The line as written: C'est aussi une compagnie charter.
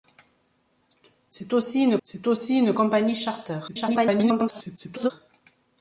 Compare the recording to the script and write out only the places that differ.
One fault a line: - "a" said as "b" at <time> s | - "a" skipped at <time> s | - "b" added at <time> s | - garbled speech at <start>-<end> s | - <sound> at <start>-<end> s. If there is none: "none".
- "c'est aussi une" added at 2.0 s
- garbled speech at 3.7-5.1 s